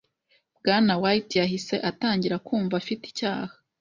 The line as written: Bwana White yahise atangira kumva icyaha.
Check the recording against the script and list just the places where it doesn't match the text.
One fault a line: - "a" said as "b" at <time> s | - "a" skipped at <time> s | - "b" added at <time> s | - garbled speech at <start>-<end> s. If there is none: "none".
- "afite" added at 2.8 s